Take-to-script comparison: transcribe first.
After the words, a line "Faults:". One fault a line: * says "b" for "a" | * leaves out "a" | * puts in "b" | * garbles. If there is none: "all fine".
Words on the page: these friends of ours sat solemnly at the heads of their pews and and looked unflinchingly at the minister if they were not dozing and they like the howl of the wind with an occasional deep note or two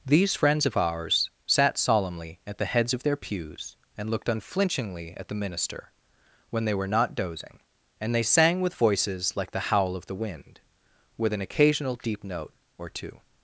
these friends of ours sat solemnly at the heads of their pews and looked unflinchingly at the minister when they were not dozing and they sang with voices like the howl of the wind with an occasional deep note or two
Faults:
* leaves out "and"
* says "when" for "if"
* puts in "sang with voices"